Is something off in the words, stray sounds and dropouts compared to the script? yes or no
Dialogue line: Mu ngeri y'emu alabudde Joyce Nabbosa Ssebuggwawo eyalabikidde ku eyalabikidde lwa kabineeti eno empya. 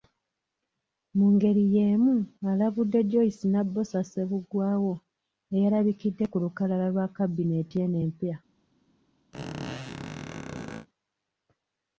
yes